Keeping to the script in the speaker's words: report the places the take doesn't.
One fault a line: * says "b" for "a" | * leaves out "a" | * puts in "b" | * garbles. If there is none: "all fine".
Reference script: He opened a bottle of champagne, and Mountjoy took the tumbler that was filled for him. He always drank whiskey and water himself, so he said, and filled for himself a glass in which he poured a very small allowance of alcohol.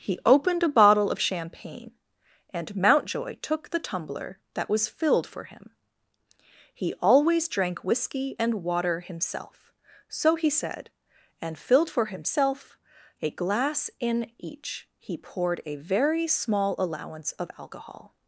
* says "each" for "which"